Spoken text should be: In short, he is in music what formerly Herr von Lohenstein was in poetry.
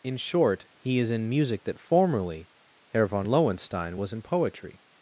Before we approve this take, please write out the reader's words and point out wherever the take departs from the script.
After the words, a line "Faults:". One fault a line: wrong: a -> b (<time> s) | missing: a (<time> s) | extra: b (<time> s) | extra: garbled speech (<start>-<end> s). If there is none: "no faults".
In short, he is in music that formerly Herr von Lohenstein was in poetry.
Faults:
wrong: what -> that (1.6 s)